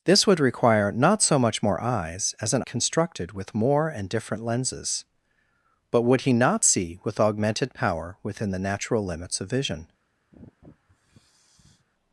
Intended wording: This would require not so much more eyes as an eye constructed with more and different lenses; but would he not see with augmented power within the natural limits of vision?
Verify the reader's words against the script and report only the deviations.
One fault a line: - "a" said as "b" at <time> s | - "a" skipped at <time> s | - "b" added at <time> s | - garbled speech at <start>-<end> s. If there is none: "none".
- "eye" skipped at 2.6 s